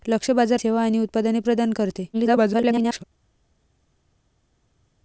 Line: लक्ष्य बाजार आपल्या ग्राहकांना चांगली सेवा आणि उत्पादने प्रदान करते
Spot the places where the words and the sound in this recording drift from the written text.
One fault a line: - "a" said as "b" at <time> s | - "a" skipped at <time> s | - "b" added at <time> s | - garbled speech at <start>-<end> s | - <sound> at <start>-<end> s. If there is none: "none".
- "आपल्या ग्राहकांना चांगली" skipped at 0.6 s
- garbled speech at 2.1-3.0 s